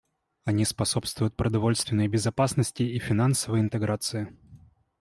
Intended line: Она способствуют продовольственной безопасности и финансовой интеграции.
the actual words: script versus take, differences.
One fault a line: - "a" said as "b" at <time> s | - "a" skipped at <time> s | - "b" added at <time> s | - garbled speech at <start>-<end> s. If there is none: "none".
- "Она" said as "Они" at 0.4 s